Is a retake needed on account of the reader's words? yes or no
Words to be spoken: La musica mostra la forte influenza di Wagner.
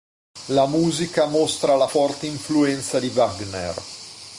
no